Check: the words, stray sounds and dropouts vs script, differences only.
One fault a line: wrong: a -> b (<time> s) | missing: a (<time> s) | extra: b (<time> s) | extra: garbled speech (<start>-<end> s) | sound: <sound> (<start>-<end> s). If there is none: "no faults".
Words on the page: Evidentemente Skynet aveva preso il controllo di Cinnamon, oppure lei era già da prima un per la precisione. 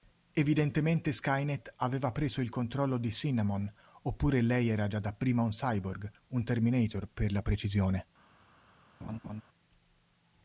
extra: cyborg un terminator (5.5 s)
sound: laugh (9.0-9.4 s)